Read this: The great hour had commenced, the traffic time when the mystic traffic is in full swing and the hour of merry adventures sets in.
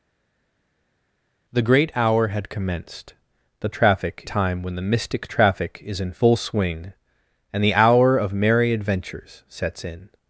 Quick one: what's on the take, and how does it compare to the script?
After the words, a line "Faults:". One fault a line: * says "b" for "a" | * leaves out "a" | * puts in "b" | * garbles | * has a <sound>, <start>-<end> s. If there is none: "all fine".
The great hour had commenced, the traffic time when the mystic traffic is in full swing and the hour of merry adventures sets in.
Faults:
all fine